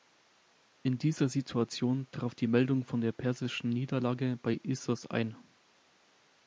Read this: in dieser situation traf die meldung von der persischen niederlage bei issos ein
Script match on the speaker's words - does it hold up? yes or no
yes